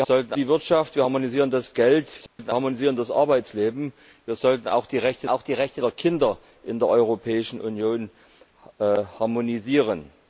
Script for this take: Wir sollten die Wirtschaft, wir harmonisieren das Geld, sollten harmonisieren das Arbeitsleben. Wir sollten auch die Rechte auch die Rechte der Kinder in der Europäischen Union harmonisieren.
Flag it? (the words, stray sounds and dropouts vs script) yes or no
yes